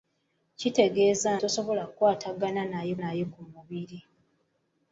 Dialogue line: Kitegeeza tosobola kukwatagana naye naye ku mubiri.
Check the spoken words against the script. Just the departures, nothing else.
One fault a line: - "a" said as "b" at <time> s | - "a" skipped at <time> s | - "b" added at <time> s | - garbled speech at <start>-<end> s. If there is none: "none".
none